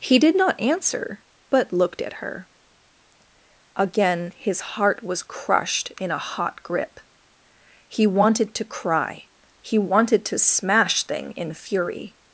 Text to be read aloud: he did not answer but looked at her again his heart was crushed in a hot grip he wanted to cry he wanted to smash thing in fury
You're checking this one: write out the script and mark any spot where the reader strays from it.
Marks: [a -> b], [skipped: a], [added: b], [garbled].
he did not answer but looked at her again his heart was crushed in a hot grip he wanted to cry he wanted to smash thing in fury